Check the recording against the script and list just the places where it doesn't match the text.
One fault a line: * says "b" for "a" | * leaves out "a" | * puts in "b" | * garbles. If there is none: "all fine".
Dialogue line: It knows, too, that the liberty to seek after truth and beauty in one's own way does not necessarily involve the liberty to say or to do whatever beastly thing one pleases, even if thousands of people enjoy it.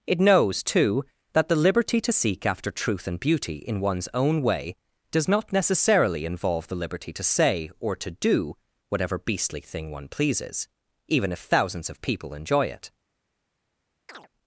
all fine